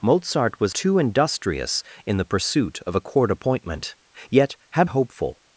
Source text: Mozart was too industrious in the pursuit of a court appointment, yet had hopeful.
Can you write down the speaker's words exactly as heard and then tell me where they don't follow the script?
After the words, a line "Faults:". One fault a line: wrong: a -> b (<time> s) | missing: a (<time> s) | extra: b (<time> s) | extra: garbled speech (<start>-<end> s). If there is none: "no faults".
Mozart was too industrious in the pursuit of a court appointment, yet had hopeful.
Faults:
no faults